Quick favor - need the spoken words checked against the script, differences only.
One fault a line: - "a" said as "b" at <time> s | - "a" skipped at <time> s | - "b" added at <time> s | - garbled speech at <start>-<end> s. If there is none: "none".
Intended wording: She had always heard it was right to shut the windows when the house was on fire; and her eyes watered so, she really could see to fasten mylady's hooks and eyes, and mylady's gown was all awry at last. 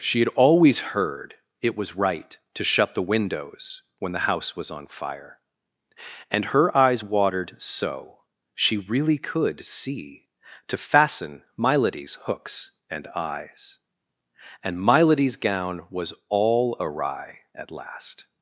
none